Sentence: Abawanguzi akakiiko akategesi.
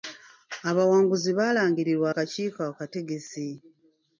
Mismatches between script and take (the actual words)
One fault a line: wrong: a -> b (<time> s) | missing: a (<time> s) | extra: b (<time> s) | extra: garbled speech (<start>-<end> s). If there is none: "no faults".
extra: baalangirirwa (1.4 s)